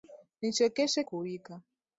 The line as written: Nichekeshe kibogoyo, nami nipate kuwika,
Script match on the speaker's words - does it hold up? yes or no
no